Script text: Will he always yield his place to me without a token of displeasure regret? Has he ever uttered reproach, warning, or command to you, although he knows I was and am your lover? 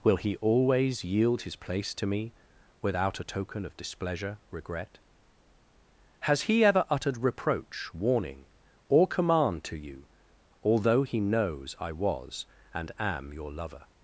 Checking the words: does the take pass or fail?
pass